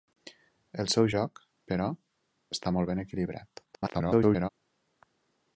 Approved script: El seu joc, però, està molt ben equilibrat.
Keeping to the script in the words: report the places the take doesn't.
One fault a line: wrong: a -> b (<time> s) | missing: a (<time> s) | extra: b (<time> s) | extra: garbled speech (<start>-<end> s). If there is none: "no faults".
extra: garbled speech (3.7-4.5 s)